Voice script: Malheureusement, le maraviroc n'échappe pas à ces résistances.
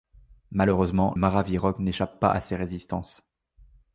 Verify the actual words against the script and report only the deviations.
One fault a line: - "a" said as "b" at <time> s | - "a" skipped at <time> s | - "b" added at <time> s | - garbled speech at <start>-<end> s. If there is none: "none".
- "le" skipped at 1.1 s